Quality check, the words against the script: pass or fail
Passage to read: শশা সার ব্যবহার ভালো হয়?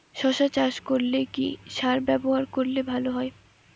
fail